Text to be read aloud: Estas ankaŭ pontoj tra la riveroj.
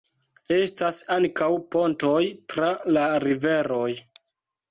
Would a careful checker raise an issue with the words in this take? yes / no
no